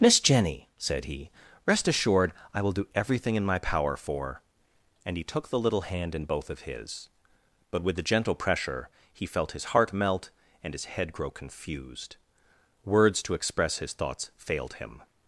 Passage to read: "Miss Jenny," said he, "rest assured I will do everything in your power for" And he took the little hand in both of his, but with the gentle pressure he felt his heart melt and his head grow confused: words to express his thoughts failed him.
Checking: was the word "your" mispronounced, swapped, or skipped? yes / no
yes